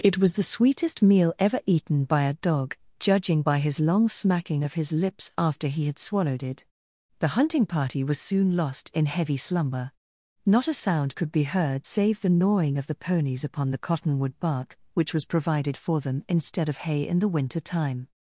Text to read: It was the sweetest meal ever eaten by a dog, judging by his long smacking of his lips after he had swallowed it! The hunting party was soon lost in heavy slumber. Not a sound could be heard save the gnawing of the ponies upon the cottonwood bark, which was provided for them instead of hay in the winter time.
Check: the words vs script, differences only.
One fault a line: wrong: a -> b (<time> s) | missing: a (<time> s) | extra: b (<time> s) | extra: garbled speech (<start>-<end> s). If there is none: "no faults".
no faults